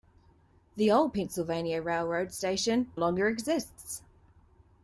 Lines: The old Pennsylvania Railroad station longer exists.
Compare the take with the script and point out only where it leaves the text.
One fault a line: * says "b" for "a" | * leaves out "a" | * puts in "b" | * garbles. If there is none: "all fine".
all fine